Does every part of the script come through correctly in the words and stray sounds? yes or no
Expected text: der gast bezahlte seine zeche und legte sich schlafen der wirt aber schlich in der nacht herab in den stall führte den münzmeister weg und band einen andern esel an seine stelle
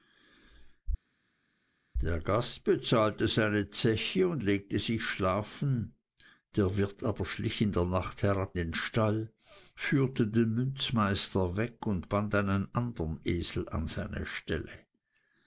no